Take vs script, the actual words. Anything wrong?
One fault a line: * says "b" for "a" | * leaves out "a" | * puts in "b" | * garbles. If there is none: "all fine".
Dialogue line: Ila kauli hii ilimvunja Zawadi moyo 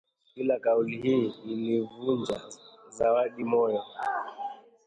all fine